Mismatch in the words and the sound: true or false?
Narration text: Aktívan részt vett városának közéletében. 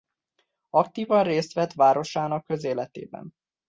false